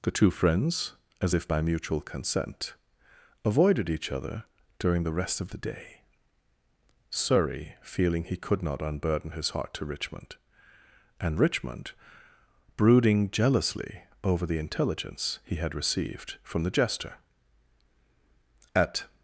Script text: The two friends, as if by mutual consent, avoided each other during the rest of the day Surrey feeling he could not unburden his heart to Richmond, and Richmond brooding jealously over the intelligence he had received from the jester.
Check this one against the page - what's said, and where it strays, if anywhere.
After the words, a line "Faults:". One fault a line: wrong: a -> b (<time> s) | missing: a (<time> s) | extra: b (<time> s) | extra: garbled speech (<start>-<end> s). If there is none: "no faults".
The two friends, as if by mutual consent, avoided each other during the rest of the day Surrey feeling he could not unburden his heart to Richmond, and Richmond brooding jealously over the intelligence he had received from the jester. At
Faults:
extra: At (18.7 s)